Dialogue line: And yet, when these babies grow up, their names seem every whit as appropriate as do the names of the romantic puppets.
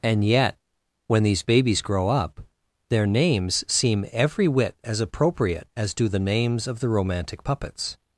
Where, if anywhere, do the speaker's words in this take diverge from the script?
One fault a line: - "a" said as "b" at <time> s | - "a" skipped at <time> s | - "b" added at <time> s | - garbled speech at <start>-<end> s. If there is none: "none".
none